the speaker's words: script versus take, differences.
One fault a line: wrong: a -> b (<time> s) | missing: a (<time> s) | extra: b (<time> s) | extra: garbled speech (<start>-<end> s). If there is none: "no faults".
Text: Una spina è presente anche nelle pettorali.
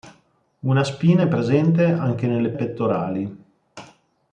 no faults